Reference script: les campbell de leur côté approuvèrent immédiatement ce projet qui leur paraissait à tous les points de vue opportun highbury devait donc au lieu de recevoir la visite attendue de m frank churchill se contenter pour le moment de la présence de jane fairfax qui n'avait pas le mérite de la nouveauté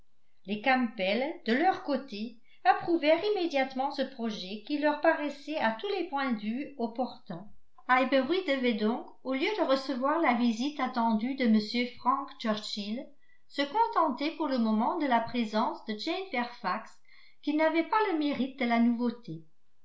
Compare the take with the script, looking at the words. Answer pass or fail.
pass